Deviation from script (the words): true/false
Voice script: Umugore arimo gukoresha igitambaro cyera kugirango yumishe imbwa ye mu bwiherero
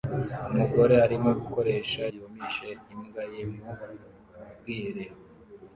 true